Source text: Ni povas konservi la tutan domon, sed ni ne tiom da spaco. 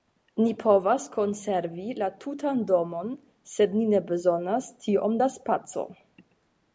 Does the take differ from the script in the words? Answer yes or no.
yes